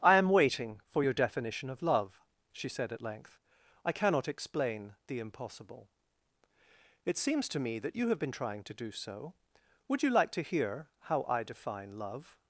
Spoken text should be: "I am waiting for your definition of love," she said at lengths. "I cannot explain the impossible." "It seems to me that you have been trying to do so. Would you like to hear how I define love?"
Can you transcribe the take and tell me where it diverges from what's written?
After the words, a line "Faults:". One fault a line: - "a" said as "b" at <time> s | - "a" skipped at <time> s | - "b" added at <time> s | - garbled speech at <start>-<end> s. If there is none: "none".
"I am waiting for your definition of love," she said at length. "I cannot explain the impossible." "It seems to me that you have been trying to do so. Would you like to hear how I define love?"
Faults:
- "lengths" said as "length" at 3.0 s